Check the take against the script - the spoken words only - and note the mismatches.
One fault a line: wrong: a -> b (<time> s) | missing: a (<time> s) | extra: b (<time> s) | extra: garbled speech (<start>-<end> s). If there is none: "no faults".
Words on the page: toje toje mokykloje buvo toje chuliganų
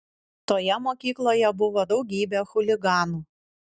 missing: toje (0.8 s)
wrong: toje -> daugybė (1.9 s)